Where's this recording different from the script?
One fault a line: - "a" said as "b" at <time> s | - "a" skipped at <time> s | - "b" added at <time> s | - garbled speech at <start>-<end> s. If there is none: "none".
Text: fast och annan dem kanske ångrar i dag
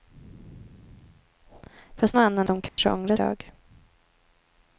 none